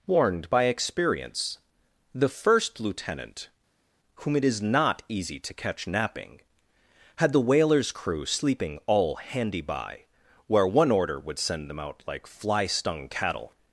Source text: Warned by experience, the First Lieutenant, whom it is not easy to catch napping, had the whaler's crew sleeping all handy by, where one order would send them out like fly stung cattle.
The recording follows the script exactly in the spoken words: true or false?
true